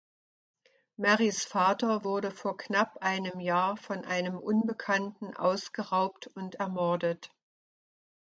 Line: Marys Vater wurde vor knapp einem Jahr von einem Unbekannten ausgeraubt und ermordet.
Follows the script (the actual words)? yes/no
yes